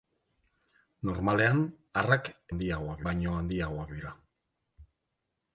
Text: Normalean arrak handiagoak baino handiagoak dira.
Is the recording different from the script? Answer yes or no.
no